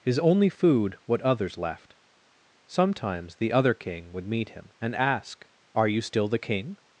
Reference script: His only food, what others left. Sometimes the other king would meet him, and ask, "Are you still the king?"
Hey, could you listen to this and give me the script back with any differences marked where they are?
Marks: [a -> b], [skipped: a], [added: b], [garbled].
His only food, what others left. Sometimes the other king would meet him, and ask, "Are you still the king?"